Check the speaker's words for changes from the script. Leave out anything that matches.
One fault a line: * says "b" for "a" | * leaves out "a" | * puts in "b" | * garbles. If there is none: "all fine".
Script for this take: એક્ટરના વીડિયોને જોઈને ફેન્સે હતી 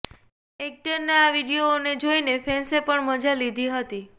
* puts in "આ"
* puts in "પણ મજા લીધી"